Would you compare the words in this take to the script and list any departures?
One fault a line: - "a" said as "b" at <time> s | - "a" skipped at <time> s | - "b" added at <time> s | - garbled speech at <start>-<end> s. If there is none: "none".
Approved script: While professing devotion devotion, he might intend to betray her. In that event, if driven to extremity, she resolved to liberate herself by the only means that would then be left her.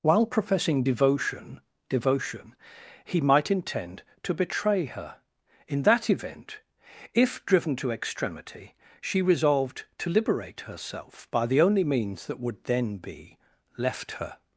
none